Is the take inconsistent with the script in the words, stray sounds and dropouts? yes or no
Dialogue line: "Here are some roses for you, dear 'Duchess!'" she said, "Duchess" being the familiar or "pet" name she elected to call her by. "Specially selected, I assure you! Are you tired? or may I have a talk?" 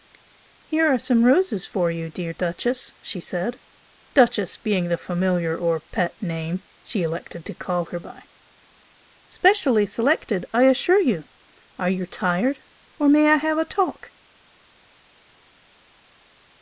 no